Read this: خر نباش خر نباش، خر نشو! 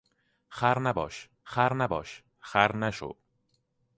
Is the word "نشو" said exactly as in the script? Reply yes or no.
yes